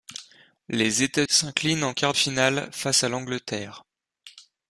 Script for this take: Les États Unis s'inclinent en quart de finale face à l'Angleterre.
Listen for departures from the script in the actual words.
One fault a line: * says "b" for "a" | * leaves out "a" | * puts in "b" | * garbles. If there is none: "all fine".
* leaves out "Unis"
* leaves out "de"